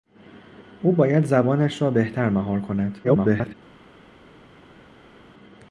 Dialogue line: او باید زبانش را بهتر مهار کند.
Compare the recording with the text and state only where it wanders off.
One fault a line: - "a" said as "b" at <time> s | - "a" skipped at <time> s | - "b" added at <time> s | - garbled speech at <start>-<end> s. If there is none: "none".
- garbled speech at 3.0-3.5 s